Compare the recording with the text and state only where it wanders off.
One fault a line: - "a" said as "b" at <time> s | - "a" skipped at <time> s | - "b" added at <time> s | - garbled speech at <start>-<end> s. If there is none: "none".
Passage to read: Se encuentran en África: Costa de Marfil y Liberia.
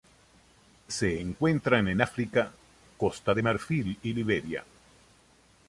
none